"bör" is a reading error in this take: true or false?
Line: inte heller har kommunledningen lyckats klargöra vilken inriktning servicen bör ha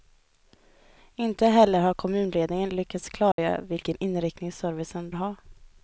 true